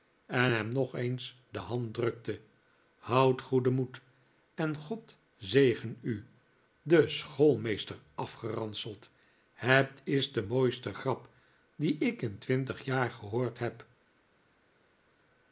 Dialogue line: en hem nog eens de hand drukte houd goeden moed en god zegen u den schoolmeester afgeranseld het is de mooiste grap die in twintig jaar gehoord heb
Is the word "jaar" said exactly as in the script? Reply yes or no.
yes